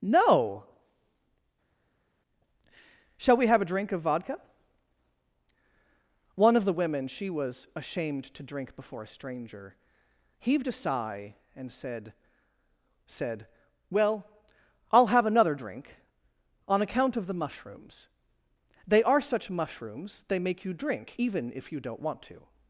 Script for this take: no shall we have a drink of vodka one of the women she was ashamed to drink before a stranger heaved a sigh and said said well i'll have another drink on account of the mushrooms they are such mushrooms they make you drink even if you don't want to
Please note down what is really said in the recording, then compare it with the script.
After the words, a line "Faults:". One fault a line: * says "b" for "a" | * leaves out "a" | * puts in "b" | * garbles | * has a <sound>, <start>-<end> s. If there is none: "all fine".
no shall we have a drink of vodka one of the women she was ashamed to drink before a stranger heaved a sigh and said said well i'll have another drink on account of the mushrooms they are such mushrooms they make you drink even if you don't want to
Faults:
all fine